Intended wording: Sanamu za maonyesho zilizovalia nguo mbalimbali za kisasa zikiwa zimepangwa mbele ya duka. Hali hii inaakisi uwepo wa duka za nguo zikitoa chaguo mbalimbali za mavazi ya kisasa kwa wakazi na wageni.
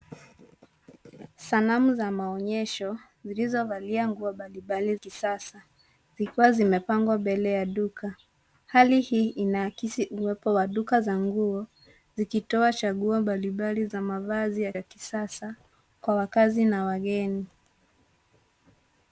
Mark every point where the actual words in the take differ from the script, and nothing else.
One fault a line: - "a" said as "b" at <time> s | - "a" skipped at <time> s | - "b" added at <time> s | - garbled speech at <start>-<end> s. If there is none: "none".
- "za" skipped at 5.0 s
- "ya" added at 14.7 s